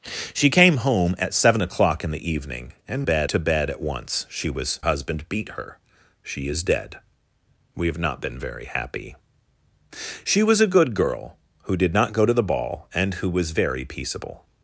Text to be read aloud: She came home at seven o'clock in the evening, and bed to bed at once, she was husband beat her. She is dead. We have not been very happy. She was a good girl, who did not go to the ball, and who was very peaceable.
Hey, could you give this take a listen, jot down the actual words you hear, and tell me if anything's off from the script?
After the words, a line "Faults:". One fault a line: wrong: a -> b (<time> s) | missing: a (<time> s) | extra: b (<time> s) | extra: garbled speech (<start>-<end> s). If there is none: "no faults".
She came home at seven o'clock in the evening, and bed to bed at once, she was husband beat her. She is dead. We have not been very happy. She was a good girl, who did not go to the ball, and who was very peaceable.
Faults:
no faults